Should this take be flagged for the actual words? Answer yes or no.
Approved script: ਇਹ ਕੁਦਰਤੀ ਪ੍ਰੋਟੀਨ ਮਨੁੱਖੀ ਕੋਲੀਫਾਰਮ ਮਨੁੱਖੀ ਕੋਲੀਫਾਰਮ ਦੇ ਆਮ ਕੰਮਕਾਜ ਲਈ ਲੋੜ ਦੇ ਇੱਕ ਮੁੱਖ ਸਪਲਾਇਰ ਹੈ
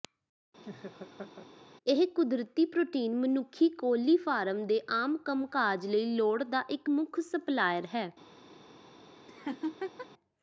yes